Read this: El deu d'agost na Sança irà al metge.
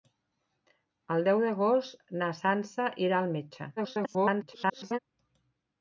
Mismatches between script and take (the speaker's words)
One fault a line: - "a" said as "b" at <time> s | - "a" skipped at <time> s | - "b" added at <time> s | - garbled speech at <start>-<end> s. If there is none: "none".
- garbled speech at 3.8-5.0 s